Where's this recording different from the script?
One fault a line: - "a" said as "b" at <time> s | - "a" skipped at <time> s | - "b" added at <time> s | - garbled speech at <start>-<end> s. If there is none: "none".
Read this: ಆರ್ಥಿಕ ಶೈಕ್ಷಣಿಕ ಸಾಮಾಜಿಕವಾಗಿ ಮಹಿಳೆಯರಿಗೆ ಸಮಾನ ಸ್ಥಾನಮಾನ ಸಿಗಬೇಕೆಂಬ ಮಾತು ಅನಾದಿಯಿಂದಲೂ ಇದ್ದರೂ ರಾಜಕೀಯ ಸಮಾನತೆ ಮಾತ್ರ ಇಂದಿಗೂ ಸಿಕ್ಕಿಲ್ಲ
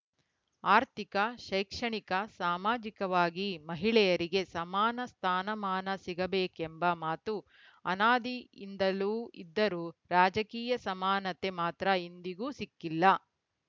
none